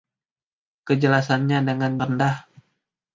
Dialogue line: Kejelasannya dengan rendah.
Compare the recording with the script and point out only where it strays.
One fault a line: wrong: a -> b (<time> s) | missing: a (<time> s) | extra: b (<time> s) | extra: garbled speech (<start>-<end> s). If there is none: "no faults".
no faults